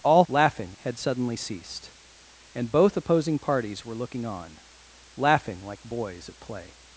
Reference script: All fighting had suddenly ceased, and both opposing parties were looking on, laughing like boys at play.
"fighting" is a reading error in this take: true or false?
true